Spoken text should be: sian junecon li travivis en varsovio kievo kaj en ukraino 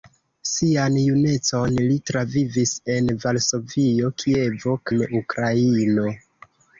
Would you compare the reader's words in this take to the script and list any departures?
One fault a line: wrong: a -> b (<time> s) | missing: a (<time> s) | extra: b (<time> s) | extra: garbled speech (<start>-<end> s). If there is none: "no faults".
missing: kaj (4.8 s)